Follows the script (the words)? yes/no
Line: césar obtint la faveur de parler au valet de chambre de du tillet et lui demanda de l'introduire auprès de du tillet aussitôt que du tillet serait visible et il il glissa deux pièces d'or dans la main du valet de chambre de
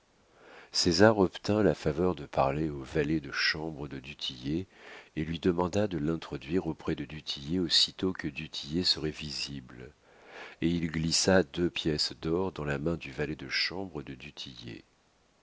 no